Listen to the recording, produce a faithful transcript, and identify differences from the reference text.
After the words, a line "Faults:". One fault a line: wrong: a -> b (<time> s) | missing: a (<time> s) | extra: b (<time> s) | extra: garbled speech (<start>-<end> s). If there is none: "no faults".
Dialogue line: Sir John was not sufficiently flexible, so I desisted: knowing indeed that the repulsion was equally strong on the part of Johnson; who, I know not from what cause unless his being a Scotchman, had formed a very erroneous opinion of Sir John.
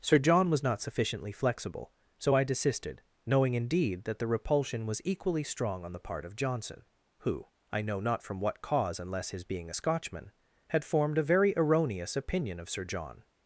Sir John was not sufficiently flexible, so I desisted: knowing indeed that the repulsion was equally strong on the part of Johnson; who, I know not from what cause unless his being a Scotchman, had formed a very erroneous opinion of Sir John.
Faults:
no faults